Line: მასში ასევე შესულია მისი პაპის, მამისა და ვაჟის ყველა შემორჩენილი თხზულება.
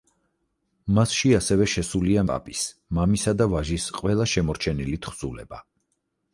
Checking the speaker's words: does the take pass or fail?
fail